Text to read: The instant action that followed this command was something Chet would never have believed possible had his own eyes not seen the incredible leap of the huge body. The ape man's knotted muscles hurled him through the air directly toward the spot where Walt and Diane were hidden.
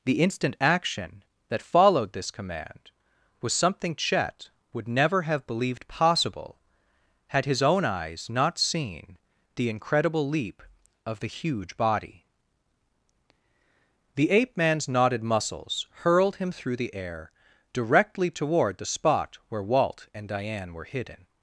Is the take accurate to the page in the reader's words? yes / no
yes